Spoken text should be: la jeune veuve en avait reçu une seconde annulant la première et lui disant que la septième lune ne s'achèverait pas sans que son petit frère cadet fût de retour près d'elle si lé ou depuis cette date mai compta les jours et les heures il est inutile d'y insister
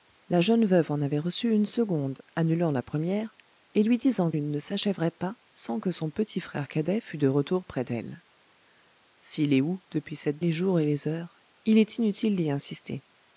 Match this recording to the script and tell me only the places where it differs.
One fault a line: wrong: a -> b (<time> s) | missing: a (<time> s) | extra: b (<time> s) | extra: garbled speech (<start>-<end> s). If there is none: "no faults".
missing: que la septième (4.3 s)
missing: date mai compta (10.4 s)